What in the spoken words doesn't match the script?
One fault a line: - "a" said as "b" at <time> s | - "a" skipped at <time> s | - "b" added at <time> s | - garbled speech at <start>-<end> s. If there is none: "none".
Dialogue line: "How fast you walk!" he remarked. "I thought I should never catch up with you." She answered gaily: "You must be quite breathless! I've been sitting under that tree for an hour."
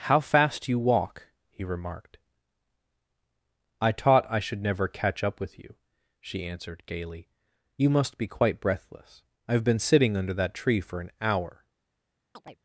- "thought" said as "taught" at 3.9 s